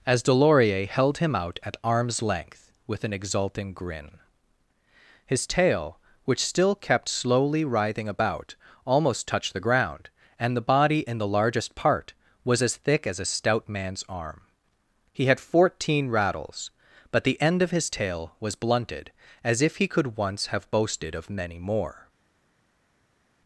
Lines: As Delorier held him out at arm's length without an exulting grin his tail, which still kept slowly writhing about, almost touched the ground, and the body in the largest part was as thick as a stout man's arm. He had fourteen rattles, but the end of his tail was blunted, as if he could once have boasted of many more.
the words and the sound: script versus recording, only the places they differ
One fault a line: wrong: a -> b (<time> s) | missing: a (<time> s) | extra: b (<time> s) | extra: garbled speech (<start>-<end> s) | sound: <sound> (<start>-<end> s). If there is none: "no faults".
wrong: without -> with (2.9 s)